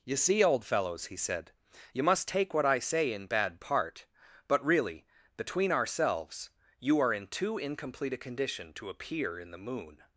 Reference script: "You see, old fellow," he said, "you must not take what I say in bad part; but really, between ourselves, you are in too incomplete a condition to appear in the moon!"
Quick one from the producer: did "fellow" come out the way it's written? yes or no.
no